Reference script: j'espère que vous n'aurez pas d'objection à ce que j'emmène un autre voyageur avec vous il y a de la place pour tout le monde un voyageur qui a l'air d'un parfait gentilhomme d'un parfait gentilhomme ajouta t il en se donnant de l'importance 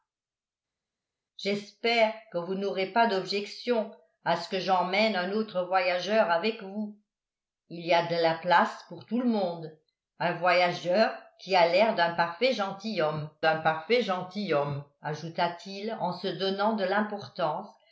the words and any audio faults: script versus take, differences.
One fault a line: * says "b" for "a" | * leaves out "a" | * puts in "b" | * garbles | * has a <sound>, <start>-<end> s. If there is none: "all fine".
all fine